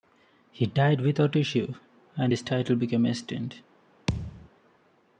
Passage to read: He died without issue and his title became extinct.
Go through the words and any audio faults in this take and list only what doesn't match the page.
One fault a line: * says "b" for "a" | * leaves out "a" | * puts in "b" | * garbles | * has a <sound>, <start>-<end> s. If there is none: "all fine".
* has a thud, 4.1-4.5 s